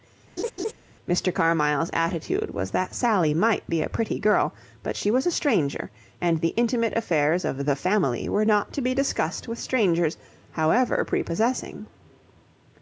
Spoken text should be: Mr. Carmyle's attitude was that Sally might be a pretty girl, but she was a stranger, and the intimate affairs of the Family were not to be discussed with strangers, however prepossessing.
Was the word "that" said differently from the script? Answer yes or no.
no